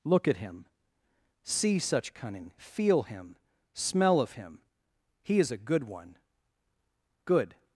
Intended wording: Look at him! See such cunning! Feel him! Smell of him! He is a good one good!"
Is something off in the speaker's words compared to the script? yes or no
no